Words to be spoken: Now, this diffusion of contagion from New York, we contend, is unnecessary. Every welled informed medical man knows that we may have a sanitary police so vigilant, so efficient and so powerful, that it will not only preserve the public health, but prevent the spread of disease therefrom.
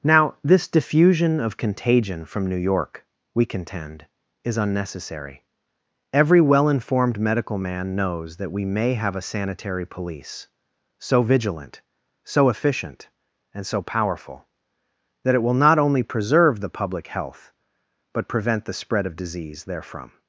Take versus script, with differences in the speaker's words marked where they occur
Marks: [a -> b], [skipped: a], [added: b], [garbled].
Now, this diffusion of contagion from New York, we contend, is unnecessary. Every [welled -> well] informed medical man knows that we may have a sanitary police so vigilant, so efficient and so powerful, that it will not only preserve the public health, but prevent the spread of disease therefrom.